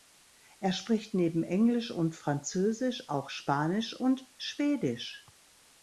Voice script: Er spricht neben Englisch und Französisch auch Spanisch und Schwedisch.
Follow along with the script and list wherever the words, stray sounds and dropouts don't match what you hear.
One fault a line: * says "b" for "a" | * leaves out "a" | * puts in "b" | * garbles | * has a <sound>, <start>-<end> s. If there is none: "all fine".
all fine